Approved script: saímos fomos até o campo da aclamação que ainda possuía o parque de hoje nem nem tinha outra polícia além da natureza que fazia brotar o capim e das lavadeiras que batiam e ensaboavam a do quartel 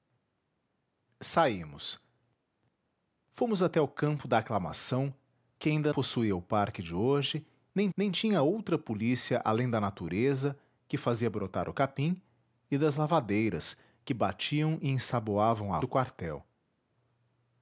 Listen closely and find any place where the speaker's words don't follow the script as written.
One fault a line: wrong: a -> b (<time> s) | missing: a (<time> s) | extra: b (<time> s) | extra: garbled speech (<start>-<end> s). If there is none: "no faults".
no faults